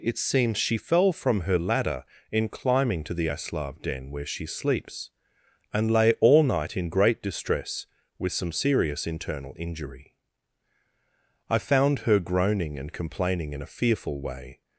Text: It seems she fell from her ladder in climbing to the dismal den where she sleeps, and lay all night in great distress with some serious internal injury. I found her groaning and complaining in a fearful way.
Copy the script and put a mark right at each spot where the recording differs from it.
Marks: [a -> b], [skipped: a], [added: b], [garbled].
It seems she fell from her ladder in climbing to the [dismal -> aslav] den where she sleeps, and lay all night in great distress with some serious internal injury. I found her groaning and complaining in a fearful way.